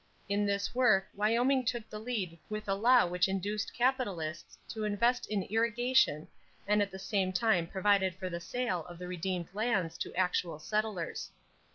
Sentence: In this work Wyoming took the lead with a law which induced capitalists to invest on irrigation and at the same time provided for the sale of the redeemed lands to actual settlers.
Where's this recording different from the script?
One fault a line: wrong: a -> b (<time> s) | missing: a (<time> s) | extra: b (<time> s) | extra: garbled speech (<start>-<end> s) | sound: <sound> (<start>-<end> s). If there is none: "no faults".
wrong: on -> in (5.3 s)